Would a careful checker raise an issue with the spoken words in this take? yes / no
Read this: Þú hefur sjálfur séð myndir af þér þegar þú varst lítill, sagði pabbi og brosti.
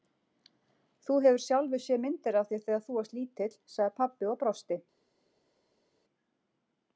no